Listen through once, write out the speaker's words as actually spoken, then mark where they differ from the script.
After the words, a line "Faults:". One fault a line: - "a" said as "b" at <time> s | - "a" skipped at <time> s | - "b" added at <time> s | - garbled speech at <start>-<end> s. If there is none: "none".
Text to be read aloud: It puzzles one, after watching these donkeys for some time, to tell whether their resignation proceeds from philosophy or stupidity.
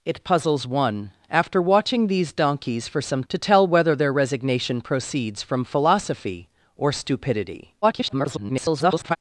It puzzles one, after watching these donkeys for some to tell whether their resignation proceeds from philosophy or stupidity. [garbled]
Faults:
- "time" skipped at 3.2 s
- garbled speech at 7.8-9.2 s